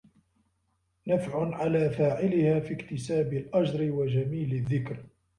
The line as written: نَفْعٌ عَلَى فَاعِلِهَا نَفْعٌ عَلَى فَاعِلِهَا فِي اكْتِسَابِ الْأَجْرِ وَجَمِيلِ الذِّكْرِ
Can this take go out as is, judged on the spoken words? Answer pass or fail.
fail